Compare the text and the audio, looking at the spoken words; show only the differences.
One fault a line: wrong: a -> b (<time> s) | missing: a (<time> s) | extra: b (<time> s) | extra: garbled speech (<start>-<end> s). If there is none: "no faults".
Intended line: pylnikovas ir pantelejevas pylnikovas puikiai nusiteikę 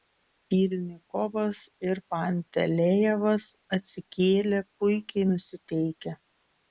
wrong: pylnikovas -> atsikėlė (3.8 s)